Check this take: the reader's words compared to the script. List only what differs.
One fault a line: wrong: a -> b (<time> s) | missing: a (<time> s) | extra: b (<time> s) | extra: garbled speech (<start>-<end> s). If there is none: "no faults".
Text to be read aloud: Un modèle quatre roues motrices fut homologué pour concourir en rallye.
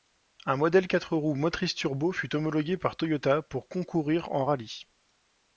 extra: turbo (1.8 s)
extra: par Toyota (2.8 s)